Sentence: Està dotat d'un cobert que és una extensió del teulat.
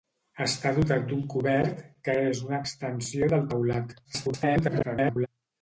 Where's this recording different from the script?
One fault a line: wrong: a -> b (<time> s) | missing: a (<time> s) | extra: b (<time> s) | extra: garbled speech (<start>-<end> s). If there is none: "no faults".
extra: garbled speech (4.0-5.3 s)